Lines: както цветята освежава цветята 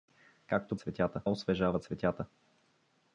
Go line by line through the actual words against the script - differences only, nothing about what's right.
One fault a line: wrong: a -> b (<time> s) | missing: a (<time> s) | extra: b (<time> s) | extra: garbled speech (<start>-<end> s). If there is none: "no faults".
no faults